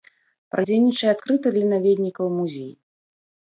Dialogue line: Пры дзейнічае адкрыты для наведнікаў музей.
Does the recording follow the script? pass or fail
pass